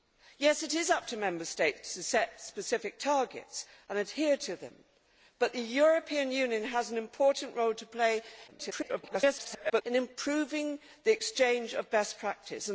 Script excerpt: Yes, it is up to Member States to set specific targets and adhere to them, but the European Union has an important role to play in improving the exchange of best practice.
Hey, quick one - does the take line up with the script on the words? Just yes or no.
no